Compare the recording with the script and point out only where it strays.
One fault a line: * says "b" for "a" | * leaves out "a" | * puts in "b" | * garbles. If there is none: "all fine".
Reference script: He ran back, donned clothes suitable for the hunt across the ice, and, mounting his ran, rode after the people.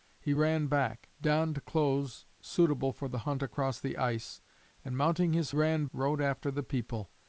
all fine